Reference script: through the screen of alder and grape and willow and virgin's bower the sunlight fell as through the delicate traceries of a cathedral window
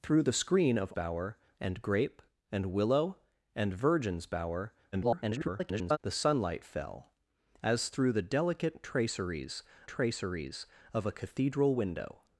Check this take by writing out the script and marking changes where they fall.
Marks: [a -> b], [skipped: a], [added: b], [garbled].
through the screen of [alder -> bower] and grape and willow and virgin's bower [garbled] the sunlight fell as through the delicate traceries [added: traceries] of a cathedral window